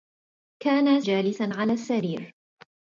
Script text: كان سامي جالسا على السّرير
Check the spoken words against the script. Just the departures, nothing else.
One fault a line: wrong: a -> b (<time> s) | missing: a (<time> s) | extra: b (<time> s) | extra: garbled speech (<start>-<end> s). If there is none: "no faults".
missing: سامي (1.0 s)